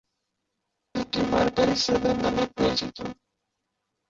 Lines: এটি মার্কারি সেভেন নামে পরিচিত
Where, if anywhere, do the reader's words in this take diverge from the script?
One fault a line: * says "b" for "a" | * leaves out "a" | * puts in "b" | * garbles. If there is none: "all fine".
all fine